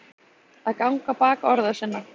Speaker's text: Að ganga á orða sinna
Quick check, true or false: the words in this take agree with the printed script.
false